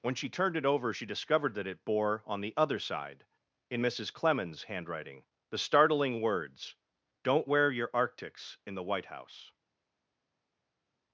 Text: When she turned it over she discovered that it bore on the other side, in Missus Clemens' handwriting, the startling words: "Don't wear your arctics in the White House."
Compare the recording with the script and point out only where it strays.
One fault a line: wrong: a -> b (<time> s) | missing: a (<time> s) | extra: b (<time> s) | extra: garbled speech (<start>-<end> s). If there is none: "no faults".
no faults